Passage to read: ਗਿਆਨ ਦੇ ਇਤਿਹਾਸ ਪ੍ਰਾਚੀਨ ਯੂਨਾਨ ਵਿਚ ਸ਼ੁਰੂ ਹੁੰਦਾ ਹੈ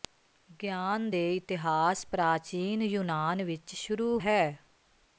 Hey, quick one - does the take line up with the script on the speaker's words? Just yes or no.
no